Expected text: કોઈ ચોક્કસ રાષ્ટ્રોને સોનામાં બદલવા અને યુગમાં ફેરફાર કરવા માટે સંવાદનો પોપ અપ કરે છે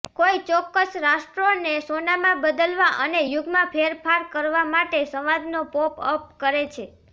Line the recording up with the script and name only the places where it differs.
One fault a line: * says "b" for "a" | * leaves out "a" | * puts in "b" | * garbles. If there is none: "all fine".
all fine